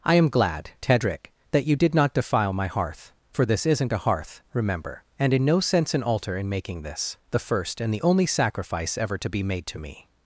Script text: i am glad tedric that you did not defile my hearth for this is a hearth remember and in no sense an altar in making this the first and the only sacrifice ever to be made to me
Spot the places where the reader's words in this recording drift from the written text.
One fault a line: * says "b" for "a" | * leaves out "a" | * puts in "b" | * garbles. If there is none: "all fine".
* says "isn't" for "is"